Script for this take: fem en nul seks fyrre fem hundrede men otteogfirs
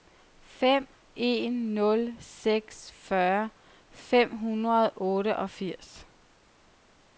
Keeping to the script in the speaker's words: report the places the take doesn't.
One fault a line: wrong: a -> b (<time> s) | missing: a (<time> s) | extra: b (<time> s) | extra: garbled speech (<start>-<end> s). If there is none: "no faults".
wrong: men -> og (4.9 s)